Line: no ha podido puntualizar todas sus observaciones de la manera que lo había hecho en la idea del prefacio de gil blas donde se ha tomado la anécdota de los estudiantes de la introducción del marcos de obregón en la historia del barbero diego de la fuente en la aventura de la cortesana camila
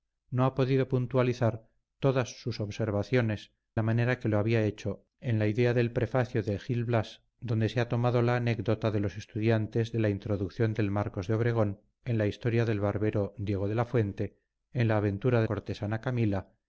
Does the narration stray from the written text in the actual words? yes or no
yes